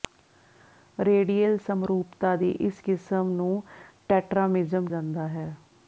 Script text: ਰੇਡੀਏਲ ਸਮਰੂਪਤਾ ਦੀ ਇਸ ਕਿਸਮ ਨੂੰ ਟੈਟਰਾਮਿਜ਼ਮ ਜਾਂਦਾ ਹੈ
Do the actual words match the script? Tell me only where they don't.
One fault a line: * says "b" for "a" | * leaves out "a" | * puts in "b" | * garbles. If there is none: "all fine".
all fine